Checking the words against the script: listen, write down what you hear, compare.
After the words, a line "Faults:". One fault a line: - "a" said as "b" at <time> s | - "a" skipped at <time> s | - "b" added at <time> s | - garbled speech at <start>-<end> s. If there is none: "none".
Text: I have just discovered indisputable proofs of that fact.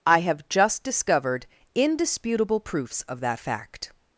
I have just discovered indisputable proofs of that fact.
Faults:
none